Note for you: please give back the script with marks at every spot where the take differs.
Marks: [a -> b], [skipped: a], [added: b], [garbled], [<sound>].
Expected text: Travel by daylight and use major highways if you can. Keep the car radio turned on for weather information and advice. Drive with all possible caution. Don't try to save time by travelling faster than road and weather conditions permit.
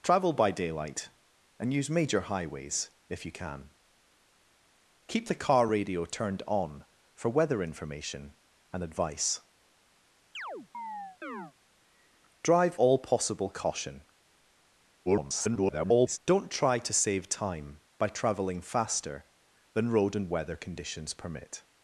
Travel by daylight and use major highways if you can. Keep the car radio turned on for weather information and advice. [chirp] Drive [skipped: with] all possible caution. [garbled] Don't try to save time by travelling faster than road and weather conditions permit.